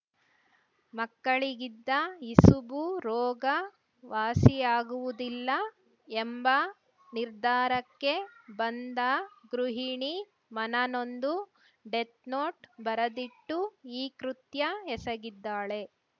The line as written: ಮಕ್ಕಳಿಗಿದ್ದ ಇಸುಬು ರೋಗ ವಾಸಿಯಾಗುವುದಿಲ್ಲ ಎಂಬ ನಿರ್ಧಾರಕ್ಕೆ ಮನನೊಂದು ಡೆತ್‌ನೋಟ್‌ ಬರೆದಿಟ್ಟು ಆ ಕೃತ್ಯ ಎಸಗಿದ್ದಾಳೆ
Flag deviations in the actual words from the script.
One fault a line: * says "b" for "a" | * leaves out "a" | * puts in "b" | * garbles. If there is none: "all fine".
* puts in "ಬಂದ ಗೃಹಿಣಿ"
* says "ಈ" for "ಆ"